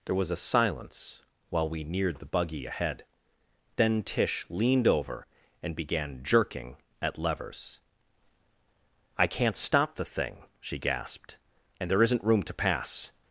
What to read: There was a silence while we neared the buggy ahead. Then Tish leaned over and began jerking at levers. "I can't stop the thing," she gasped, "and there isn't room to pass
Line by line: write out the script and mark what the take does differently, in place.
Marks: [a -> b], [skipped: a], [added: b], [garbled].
There was a silence while we neared the buggy ahead. Then Tish leaned over and began jerking at levers. "I can't stop the thing," she gasped, "and there isn't room to pass